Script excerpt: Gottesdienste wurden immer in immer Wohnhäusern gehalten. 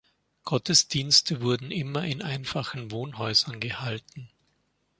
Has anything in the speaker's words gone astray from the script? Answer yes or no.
yes